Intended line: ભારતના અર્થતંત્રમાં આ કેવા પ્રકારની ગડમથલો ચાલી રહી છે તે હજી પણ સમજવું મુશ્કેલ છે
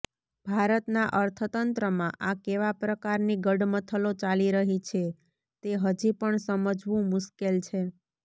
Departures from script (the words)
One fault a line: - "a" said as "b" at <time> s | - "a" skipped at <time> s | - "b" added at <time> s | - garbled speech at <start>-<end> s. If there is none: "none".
none